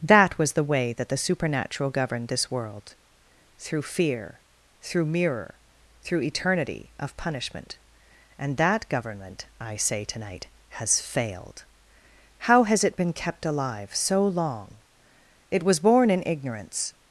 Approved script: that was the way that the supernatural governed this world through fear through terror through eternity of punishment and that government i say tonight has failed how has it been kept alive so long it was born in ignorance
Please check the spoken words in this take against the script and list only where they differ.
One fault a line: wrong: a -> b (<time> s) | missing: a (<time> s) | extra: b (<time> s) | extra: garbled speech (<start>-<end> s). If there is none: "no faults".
wrong: terror -> mirror (5.0 s)